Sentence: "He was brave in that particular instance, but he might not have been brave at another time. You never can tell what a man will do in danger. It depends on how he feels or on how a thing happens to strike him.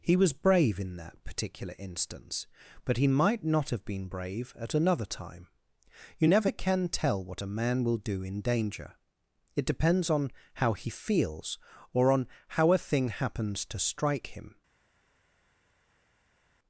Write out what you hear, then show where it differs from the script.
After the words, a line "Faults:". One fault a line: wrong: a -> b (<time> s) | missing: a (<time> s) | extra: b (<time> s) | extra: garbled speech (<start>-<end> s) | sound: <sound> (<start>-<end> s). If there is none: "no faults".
"He was brave in that particular instance, but he might not have been brave at another time. You never can tell what a man will do in danger. It depends on how he feels or on how a thing happens to strike him.
Faults:
no faults